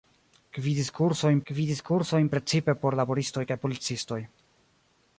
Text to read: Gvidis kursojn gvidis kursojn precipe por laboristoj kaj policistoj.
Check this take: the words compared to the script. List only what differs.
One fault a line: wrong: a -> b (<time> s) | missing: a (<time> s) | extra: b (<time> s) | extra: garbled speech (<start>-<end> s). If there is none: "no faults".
no faults